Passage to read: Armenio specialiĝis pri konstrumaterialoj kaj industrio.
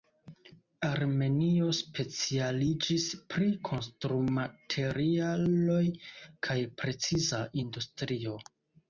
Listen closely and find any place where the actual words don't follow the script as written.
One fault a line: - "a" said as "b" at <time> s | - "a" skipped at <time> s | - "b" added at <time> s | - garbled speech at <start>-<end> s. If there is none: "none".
- "preciza" added at 6.8 s